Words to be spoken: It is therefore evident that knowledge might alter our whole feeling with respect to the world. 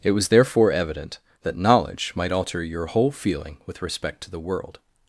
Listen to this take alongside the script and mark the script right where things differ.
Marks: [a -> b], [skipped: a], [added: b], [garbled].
It [is -> was] therefore evident that knowledge might alter [our -> your] whole feeling with respect to the world.